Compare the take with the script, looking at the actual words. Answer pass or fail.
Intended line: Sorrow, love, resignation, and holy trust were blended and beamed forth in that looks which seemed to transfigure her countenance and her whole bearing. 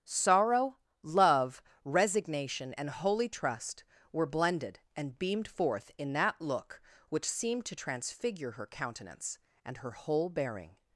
fail